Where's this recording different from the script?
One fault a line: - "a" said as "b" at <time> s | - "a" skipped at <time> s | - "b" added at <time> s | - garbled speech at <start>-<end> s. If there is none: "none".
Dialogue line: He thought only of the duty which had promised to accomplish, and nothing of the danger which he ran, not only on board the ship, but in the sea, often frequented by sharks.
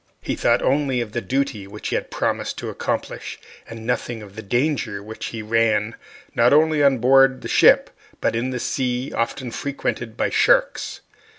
none